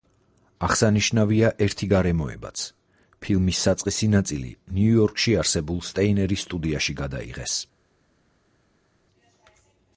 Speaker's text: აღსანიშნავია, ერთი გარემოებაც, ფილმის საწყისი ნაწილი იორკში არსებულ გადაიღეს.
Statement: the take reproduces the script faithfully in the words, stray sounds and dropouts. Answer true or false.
false